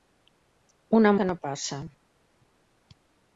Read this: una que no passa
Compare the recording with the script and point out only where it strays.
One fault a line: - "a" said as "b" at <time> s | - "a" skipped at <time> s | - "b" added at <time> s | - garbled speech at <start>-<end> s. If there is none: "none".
none